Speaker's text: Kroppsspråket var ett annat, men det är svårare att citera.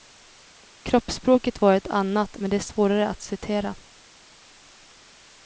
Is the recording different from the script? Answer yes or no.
no